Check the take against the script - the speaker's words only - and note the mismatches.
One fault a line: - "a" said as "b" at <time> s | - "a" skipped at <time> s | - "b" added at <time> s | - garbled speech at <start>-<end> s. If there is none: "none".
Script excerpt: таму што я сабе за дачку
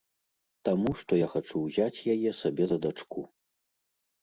- "хачу ўзяць яе" added at 1.3 s